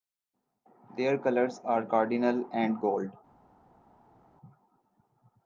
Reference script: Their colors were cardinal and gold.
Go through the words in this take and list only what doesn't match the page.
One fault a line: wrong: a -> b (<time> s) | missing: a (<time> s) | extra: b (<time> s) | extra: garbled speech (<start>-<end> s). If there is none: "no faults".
wrong: were -> are (1.6 s)